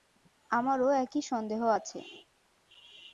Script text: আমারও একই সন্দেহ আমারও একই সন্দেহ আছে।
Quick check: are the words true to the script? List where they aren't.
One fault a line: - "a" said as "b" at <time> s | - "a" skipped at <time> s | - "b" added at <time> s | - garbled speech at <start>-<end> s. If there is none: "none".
- "আমারও একই সন্দেহ" skipped at 1.6 s